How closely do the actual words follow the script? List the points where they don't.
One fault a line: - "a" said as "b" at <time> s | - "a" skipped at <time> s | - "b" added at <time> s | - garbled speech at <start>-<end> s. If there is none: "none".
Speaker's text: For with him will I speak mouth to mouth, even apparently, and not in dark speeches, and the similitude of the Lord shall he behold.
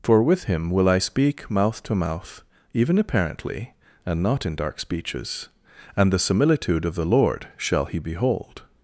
none